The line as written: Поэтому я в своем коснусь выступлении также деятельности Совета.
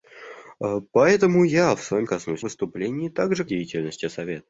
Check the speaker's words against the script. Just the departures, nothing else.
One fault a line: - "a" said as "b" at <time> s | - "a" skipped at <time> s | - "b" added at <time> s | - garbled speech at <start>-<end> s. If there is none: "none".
none